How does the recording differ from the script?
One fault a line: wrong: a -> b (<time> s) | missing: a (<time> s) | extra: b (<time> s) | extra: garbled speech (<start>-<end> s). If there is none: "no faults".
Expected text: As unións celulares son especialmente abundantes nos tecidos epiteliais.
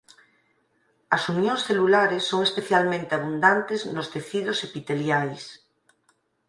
no faults